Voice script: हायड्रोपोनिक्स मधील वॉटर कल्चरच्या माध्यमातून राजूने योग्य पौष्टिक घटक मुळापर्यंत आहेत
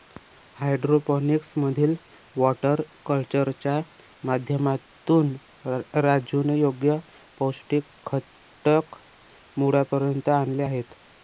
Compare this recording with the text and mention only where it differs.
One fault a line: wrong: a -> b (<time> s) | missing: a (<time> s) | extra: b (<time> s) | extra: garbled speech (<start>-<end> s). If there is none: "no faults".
extra: आणले (10.3 s)